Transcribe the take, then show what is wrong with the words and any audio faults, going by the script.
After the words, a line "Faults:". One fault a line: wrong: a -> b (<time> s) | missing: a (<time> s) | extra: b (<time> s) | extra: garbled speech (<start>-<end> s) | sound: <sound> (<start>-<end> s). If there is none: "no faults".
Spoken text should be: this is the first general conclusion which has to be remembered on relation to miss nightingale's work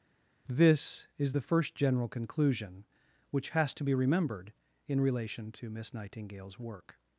this is the first general conclusion which has to be remembered in relation to miss nightingale's work
Faults:
wrong: on -> in (4.9 s)